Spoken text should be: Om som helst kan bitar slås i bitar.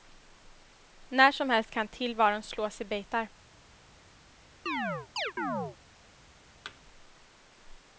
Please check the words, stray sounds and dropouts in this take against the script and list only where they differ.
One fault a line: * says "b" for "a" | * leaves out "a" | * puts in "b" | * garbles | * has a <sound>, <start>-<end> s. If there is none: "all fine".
* says "När" for "Om"
* says "tillvaron" for "bitar"
* has a chirp, 4.7-5.8 s
* has a thud, 6.6-6.8 s